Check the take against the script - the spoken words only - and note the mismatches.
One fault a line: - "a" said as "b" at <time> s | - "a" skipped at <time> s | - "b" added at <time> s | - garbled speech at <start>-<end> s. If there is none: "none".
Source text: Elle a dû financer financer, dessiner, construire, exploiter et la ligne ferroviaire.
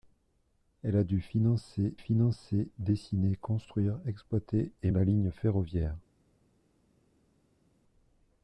none